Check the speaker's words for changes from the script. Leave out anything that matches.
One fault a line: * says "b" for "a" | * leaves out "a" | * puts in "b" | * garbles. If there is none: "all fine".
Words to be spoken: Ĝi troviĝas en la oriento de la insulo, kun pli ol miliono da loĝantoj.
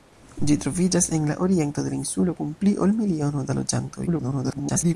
* garbles